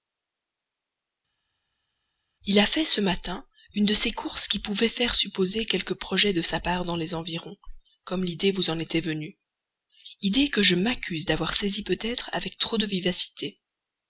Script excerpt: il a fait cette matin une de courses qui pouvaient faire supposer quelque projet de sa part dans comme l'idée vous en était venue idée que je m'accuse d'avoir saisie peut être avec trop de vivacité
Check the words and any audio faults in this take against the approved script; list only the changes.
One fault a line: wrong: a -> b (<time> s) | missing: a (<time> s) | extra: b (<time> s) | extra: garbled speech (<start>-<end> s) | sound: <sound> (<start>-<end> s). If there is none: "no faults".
wrong: cette -> ce (2.8 s)
extra: ces (3.9 s)
extra: les environs (7.0 s)